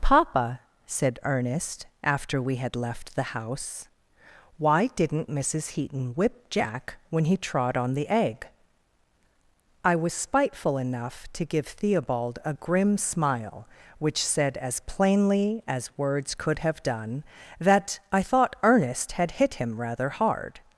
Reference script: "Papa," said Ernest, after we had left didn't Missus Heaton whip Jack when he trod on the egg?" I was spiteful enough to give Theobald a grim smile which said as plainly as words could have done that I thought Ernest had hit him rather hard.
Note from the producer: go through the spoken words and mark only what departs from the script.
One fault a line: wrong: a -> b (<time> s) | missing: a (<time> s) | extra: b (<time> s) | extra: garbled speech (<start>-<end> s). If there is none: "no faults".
extra: the house Why (3.1 s)